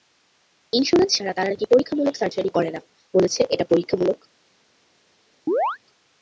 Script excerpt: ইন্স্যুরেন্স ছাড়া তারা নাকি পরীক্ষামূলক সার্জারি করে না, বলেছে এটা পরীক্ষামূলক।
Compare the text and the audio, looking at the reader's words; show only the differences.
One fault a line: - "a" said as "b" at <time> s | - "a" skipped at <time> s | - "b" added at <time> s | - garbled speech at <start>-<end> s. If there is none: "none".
none